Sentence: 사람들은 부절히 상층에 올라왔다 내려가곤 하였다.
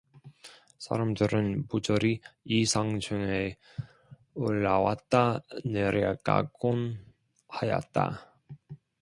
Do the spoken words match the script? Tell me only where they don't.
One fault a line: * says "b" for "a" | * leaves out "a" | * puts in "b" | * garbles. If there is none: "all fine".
* puts in "이"